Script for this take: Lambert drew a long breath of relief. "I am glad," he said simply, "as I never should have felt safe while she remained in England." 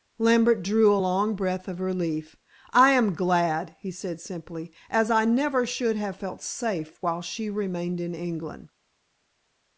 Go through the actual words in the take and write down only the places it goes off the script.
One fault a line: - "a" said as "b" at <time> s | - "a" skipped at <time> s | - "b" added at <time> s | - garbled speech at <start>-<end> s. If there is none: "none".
none